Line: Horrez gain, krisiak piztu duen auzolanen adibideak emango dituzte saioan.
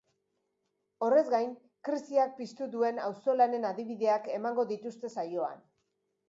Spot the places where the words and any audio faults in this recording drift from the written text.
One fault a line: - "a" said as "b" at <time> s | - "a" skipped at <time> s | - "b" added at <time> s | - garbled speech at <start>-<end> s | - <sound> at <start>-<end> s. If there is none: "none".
none